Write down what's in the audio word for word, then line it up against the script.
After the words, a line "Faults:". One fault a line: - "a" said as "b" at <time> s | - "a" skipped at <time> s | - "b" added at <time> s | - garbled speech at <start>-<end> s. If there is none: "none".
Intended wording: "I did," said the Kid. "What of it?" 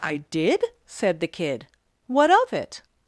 "I did," said the Kid. "What of it?"
Faults:
none